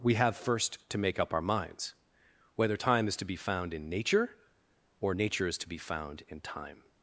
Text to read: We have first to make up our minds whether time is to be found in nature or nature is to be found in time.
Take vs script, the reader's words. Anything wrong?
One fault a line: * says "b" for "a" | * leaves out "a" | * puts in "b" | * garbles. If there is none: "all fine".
all fine